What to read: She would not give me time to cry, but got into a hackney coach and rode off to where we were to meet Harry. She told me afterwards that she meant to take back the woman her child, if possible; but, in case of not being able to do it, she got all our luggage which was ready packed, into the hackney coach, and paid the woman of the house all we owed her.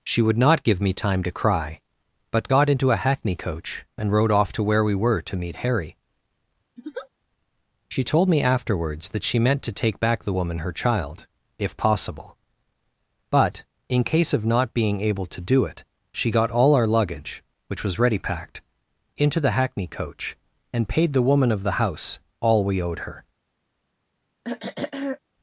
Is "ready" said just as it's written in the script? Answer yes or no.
yes